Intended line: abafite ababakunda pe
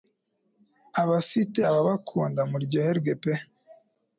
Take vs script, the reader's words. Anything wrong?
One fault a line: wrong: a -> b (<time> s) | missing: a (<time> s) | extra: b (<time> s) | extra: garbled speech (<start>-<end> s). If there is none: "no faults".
extra: muryoherwe (2.5 s)